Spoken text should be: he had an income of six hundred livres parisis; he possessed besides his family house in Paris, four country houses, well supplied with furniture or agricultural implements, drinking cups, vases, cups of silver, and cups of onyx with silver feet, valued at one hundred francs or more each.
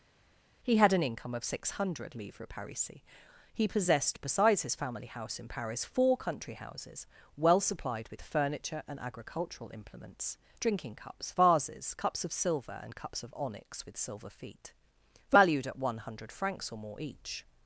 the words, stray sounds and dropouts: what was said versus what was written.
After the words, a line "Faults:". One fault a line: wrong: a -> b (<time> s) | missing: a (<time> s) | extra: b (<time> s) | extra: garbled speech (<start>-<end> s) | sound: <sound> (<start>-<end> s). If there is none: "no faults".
he had an income of six hundred livres parisis; he possessed besides his family house in Paris, four country houses, well supplied with furniture and agricultural implements, drinking cups, vases, cups of silver, and cups of onyx with silver feet, valued at one hundred francs or more each.
Faults:
wrong: or -> and (8.9 s)